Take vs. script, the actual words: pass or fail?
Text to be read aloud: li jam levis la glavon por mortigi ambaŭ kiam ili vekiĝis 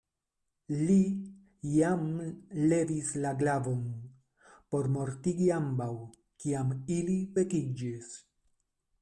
pass